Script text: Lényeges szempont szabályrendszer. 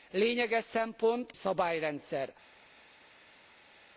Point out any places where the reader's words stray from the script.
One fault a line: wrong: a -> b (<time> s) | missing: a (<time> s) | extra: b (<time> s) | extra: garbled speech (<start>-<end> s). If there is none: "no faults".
no faults